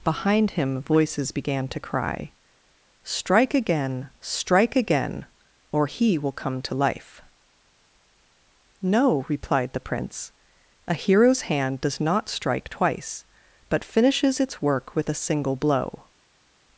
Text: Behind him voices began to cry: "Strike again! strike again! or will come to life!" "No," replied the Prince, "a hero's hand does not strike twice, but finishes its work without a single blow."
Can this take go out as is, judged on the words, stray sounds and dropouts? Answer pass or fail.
fail